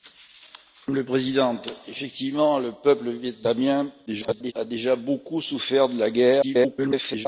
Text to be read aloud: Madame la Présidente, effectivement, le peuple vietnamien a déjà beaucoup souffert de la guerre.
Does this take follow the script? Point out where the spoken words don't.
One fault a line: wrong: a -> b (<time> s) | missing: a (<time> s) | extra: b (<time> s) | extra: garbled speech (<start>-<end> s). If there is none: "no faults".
extra: garbled speech (4.1-4.5 s)
extra: garbled speech (6.4-7.3 s)